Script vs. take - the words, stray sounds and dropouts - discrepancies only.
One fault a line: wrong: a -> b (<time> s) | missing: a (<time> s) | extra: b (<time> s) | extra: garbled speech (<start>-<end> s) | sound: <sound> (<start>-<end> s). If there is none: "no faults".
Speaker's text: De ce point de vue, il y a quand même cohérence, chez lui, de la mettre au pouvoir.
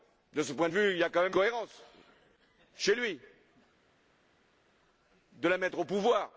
no faults